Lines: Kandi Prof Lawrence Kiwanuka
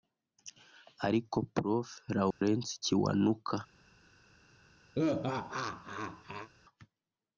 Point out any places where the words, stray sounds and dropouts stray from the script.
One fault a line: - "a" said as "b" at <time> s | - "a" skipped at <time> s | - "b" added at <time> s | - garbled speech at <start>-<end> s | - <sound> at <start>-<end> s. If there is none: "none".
- "Kandi" said as "Ariko" at 1.1 s
- dropout at 2.3-2.4 s
- laugh at 4.9-6.5 s